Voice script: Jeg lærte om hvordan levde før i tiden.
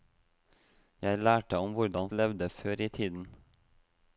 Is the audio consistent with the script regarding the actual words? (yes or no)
yes